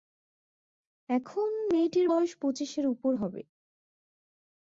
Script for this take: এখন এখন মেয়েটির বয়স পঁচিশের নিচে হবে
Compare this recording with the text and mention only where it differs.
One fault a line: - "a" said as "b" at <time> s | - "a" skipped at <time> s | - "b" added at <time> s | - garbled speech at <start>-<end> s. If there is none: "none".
- "এখন" skipped at 1.5 s
- "নিচে" said as "উপর" at 2.9 s